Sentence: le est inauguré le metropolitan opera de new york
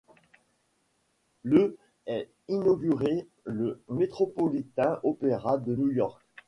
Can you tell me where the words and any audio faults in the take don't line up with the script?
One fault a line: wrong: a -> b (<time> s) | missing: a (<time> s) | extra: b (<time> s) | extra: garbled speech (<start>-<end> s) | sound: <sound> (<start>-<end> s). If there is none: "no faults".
no faults